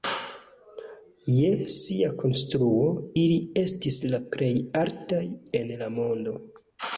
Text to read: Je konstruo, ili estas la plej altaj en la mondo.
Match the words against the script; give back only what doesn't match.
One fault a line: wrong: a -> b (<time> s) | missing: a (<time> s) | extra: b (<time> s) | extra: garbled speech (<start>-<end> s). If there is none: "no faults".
extra: sia (1.7 s)
wrong: estas -> estis (3.6 s)